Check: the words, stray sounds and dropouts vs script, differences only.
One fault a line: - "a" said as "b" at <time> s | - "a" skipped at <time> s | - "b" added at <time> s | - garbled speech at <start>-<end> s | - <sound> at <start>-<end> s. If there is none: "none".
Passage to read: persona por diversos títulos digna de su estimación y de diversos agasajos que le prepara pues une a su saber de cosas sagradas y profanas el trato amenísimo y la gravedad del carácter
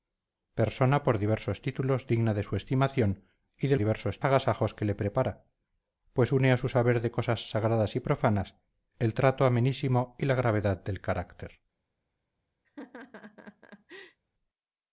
- laugh at 12.6-14.2 s